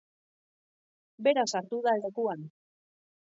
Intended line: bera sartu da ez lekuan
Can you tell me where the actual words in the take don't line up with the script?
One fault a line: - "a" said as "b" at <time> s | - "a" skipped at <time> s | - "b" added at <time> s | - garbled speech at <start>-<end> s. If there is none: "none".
none